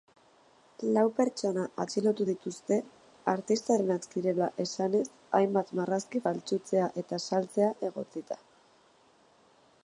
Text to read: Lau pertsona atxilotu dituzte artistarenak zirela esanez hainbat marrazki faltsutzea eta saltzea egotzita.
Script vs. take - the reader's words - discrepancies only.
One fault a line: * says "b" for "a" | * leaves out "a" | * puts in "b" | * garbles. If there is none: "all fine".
all fine